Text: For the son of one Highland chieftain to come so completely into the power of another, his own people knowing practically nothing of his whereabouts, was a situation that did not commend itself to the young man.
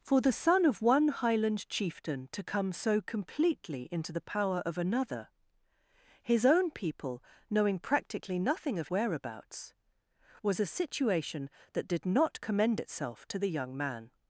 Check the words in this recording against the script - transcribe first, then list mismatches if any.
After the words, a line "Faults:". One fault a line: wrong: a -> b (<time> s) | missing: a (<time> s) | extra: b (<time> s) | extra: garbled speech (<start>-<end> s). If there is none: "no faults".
For the son of one Highland chieftain to come so completely into the power of another, his own people knowing practically nothing of whereabouts, was a situation that did not commend itself to the young man.
Faults:
missing: his (8.9 s)